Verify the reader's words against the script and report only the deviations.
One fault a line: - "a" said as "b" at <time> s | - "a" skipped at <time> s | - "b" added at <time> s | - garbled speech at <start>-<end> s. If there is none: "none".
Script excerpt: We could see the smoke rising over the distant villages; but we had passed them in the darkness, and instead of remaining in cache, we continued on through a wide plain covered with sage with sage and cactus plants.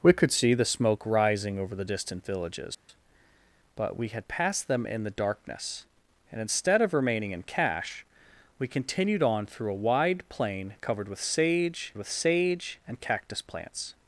none